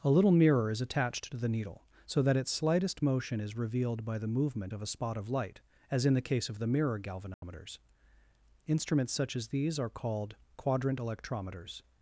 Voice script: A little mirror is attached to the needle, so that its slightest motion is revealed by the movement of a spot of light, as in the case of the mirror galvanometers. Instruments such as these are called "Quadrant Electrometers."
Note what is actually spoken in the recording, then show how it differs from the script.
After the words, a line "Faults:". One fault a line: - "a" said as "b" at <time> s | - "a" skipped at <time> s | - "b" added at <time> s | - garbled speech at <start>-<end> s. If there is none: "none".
A little mirror is attached to the needle, so that its slightest motion is revealed by the movement of a spot of light, as in the case of the mirror galvanometers. Instruments such as these are called "Quadrant Electrometers."
Faults:
none